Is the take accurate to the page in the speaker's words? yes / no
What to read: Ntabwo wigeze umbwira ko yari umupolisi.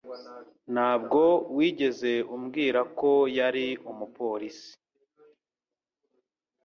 yes